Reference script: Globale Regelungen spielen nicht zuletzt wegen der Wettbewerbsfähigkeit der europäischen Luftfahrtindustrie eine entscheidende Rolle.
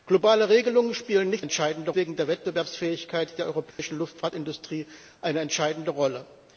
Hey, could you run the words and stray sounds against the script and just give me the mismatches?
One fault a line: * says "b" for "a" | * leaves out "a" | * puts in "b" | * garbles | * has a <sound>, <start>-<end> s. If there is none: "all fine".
* says "entscheidende" for "zuletzt"
* has a dropout, 3.7-3.8 s